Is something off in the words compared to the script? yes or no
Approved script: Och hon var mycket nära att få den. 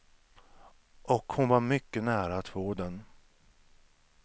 no